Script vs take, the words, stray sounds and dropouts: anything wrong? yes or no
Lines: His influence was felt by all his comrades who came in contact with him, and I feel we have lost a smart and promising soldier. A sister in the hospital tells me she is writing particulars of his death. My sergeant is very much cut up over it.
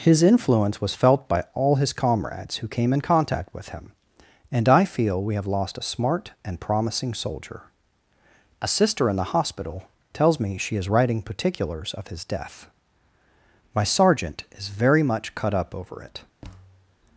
yes